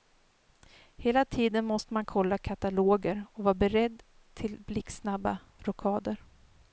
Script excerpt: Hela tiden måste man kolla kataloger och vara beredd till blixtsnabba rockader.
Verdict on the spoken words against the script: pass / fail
pass